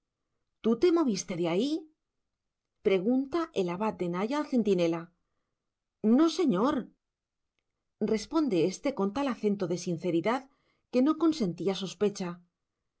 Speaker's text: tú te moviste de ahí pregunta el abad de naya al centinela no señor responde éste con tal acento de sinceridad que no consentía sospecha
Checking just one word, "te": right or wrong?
right